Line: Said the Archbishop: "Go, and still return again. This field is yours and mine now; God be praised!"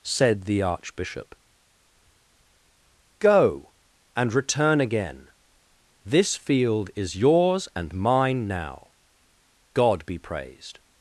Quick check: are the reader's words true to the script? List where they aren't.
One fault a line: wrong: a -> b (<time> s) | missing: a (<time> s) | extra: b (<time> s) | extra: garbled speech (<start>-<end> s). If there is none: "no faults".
missing: still (4.3 s)